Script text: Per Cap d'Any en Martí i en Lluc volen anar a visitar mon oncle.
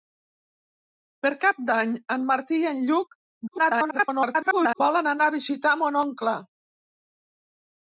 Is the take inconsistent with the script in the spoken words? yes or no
yes